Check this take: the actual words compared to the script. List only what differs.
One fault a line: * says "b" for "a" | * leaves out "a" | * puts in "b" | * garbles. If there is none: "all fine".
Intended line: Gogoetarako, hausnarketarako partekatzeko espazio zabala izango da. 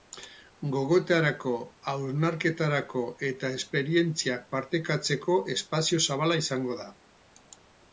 * puts in "eta esperientziak"